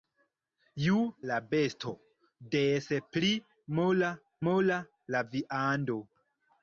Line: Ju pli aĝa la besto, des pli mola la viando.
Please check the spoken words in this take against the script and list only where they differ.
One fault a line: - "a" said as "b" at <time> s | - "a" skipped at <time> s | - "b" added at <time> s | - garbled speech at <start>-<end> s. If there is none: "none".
- "pli aĝa" skipped at 0.9 s
- "mola" added at 4.5 s